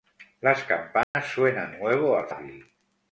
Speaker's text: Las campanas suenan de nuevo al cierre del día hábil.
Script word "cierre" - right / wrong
wrong